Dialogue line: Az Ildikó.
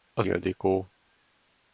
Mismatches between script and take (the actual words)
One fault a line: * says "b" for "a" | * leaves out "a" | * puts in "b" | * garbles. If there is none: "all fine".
all fine